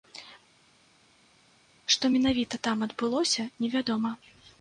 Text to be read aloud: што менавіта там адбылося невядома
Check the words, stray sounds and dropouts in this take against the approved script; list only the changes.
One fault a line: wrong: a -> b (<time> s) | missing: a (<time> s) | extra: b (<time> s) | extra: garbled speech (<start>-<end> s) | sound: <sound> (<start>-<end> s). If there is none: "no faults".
no faults